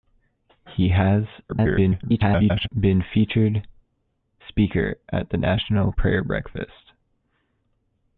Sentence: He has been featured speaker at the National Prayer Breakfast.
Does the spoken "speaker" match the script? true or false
true